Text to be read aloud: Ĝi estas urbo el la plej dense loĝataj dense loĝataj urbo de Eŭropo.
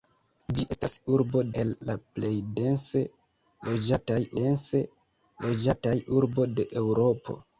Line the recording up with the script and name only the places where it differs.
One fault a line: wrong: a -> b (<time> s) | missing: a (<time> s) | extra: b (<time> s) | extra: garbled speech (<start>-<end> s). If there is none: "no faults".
no faults